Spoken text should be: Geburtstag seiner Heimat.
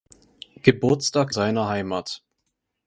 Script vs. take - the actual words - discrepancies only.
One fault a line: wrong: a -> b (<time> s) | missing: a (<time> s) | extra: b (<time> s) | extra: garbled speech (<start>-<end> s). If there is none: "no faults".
no faults